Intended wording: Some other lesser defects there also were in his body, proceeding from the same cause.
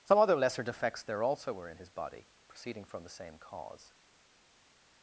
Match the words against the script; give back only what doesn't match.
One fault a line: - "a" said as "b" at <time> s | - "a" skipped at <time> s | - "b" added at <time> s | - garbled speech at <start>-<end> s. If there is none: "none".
none